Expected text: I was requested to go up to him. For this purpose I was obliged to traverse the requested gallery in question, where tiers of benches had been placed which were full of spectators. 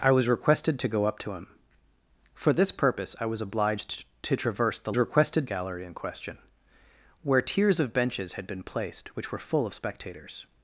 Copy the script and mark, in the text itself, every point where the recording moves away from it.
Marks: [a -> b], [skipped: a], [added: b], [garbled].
I was requested to go up to him. For this purpose I was obliged to traverse the requested gallery in question, where tiers of benches had been placed which were full of spectators.